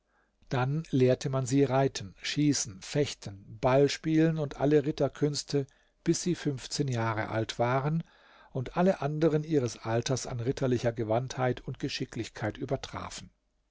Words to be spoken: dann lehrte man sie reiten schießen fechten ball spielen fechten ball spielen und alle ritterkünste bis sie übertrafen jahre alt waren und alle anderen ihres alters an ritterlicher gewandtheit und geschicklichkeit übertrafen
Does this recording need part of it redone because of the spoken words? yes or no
yes